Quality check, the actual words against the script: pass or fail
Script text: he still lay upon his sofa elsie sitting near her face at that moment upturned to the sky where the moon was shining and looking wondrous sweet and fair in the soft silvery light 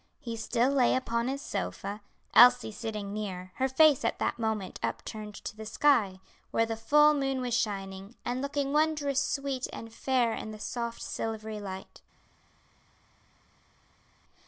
fail